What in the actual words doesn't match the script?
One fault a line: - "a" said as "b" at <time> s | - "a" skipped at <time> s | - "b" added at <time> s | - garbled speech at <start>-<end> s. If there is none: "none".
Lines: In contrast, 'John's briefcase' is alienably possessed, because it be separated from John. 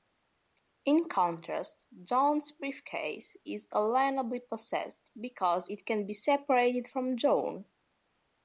- "can" added at 5.8 s